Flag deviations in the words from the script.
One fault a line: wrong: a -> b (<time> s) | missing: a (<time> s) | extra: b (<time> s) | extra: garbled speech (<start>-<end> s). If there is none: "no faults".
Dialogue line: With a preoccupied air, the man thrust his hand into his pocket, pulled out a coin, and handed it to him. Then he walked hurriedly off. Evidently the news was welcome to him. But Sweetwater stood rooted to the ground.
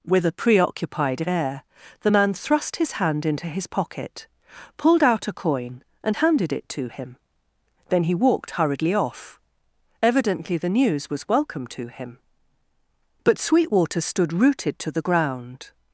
no faults